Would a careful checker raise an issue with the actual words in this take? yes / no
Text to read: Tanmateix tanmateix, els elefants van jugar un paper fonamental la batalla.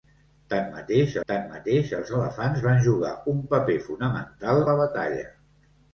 no